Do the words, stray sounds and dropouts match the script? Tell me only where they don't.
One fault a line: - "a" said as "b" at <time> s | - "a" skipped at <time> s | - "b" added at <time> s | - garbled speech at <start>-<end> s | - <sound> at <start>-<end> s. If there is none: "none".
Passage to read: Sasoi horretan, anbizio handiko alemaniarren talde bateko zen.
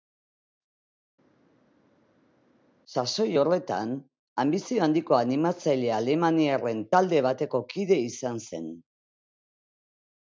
- "animatzaile" added at 5.2 s
- "kide izan" added at 7.8 s